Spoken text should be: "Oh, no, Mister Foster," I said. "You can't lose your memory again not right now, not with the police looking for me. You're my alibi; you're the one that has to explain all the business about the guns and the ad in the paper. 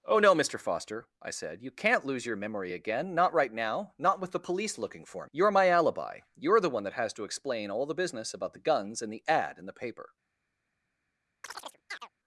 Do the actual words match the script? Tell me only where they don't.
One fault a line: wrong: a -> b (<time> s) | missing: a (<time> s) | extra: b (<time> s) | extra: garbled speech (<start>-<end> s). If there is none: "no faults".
missing: me (5.3 s)